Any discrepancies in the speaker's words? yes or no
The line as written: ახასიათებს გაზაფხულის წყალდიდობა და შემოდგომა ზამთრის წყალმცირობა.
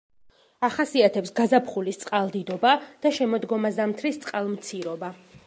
no